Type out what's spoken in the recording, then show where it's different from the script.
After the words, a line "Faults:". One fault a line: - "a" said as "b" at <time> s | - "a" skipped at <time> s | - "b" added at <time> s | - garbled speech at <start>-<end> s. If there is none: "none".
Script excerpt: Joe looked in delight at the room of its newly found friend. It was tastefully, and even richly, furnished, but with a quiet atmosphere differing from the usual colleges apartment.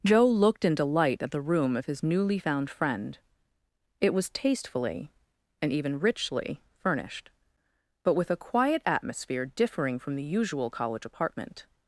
Joe looked in delight at the room of his newly found friend. It was tastefully, and even richly, furnished, but with a quiet atmosphere differing from the usual college apartment.
Faults:
- "its" said as "his" at 1.9 s
- "colleges" said as "college" at 10.7 s